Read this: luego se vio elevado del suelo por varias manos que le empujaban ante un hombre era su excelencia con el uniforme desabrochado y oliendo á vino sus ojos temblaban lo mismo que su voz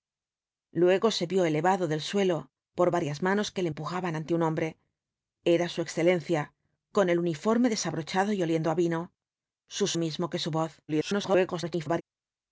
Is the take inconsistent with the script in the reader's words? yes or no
yes